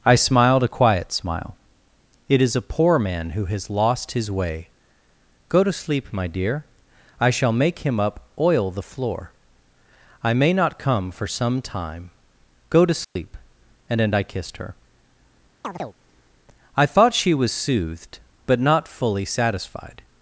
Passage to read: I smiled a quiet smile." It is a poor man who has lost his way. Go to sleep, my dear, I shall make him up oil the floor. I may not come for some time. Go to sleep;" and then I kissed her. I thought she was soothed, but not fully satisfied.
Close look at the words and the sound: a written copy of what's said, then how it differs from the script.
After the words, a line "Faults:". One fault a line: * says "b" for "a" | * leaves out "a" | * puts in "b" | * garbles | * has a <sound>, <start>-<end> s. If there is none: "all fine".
I smiled a quiet smile." It is a poor man who has lost his way. Go to sleep, my dear, I shall make him up oil the floor. I may not come for some time. Go to sleep;" and then I kissed her. I thought she was soothed, but not fully satisfied.
Faults:
* has a dropout, 13.0-13.2 s
* has a chirp, 15.6-16.0 s